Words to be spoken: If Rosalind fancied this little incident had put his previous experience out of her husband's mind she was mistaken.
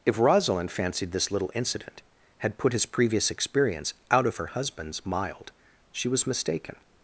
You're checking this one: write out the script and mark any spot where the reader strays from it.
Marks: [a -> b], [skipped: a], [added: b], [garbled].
If Rosalind fancied this little incident had put his previous experience out of her husband's [mind -> mild] she was mistaken.